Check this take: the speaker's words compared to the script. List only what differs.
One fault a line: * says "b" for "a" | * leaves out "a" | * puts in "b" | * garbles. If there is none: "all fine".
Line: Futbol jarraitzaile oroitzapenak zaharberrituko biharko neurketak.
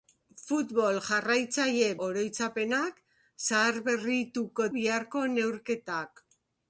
all fine